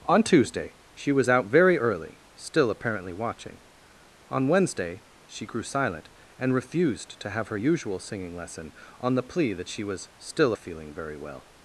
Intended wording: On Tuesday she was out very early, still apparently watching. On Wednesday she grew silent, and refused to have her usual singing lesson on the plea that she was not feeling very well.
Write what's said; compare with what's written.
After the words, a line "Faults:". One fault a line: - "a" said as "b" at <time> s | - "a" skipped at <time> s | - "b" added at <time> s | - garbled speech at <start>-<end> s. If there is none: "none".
On Tuesday she was out very early, still apparently watching. On Wednesday she grew silent, and refused to have her usual singing lesson on the plea that she was still feeling very well.
Faults:
- "not" said as "still" at 10.2 s